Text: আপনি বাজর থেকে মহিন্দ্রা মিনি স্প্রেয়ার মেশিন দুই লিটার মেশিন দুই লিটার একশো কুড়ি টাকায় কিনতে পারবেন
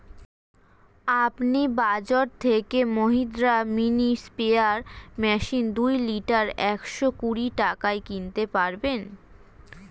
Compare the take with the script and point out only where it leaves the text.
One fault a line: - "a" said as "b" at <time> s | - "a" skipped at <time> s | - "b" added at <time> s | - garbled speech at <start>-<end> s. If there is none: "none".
- "মেশিন দুই লিটার" skipped at 6.5 s